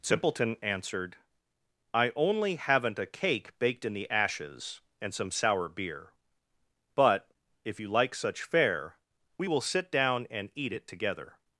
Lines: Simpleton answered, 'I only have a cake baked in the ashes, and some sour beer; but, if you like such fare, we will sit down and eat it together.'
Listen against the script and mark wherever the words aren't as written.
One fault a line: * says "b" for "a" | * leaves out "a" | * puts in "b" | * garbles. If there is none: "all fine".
* says "haven't" for "have"